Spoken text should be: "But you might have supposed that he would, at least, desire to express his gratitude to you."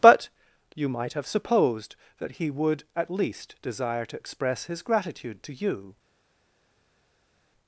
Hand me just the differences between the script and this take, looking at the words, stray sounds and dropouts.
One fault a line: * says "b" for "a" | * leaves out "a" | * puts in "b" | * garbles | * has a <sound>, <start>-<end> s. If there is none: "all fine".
all fine